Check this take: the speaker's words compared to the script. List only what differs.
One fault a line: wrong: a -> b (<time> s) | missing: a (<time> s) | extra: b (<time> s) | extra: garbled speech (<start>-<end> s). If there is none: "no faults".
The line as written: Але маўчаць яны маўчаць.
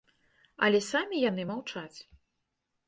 wrong: маўчаць -> самі (0.9 s)